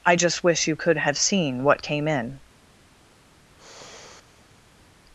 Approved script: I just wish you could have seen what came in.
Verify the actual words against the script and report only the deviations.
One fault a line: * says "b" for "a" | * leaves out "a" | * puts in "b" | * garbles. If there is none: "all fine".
all fine